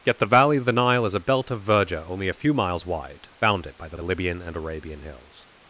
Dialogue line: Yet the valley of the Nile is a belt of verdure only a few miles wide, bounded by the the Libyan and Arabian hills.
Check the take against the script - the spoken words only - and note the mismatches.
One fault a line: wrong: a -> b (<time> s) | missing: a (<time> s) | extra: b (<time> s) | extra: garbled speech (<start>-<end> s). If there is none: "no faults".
no faults